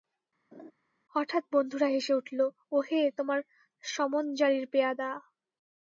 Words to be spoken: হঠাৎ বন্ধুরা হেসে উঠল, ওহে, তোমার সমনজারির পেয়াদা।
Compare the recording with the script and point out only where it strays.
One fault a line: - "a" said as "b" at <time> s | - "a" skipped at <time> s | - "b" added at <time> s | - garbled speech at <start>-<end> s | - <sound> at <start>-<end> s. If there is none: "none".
- laugh at 0.5-0.7 s